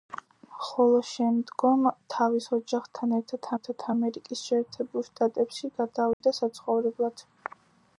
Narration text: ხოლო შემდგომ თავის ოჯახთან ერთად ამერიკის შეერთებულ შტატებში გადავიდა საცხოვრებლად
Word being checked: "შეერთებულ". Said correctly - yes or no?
yes